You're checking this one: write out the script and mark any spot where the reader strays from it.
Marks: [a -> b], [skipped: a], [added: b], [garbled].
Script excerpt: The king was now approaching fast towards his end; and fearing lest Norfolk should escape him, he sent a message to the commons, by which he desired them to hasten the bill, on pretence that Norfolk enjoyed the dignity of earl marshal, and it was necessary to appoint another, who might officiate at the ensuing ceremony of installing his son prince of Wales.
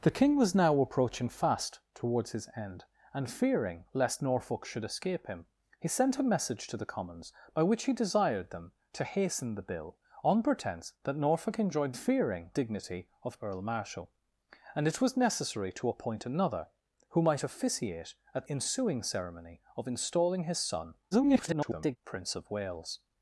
The king was now approaching fast towards his end; and fearing lest Norfolk should escape him, he sent a message to the commons, by which he desired them to hasten the bill, on pretence that Norfolk enjoyed [the -> fearing] dignity of earl marshal, and it was necessary to appoint another, who might officiate at [skipped: the] ensuing ceremony of installing his son [garbled] prince of Wales.